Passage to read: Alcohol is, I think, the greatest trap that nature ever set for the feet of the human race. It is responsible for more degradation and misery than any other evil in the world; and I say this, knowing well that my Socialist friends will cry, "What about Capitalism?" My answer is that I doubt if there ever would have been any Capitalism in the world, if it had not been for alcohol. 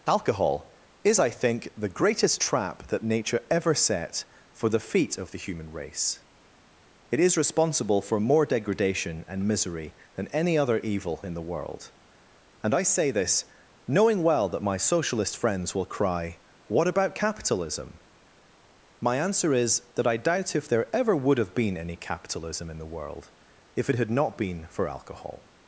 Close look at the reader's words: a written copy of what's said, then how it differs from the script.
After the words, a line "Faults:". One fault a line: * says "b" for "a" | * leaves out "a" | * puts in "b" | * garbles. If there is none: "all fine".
Alcohol is, I think, the greatest trap that nature ever set for the feet of the human race. It is responsible for more degradation and misery than any other evil in the world; and I say this, knowing well that my Socialist friends will cry, "What about Capitalism?" My answer is that I doubt if there ever would have been any Capitalism in the world, if it had not been for alcohol.
Faults:
all fine